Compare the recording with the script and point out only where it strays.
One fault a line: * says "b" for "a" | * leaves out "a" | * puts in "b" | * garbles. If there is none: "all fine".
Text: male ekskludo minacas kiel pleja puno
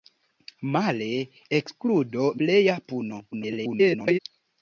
* leaves out "minacas kiel"
* garbles